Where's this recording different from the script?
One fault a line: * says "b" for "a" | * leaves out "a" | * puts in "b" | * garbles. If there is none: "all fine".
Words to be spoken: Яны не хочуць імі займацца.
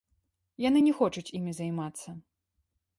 all fine